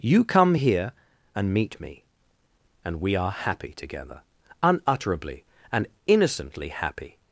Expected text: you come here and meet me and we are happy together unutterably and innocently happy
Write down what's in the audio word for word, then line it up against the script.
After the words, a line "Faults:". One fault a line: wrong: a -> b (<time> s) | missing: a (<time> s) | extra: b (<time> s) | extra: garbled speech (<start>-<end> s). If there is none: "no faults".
you come here and meet me and we are happy together unutterably and innocently happy
Faults:
no faults